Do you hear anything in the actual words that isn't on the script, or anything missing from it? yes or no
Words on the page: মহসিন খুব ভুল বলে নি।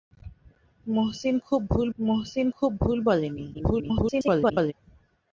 yes